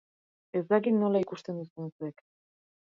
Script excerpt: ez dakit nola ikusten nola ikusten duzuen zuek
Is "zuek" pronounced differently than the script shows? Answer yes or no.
no